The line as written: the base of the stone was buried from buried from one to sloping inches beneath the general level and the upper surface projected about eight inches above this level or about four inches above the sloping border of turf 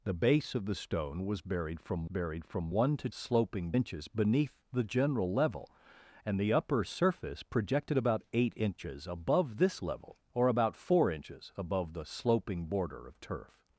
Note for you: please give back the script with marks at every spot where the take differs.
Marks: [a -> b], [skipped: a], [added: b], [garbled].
the base of the stone was buried from buried from one to sloping inches beneath the general level and the upper surface projected about eight inches above this level or about four inches above the sloping border of turf